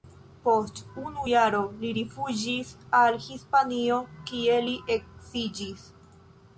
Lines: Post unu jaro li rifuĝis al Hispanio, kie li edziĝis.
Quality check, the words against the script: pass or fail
pass